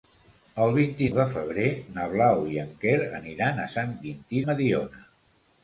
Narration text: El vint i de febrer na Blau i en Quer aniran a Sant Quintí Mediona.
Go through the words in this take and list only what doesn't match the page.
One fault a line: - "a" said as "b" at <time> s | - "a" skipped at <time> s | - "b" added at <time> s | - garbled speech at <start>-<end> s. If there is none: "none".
none